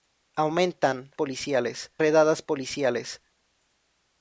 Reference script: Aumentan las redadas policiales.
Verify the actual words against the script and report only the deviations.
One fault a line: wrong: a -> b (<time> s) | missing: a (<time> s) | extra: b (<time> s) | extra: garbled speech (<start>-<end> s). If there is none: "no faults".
wrong: las -> policiales (1.1 s)